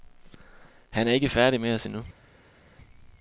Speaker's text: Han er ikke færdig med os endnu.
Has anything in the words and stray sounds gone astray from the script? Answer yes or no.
no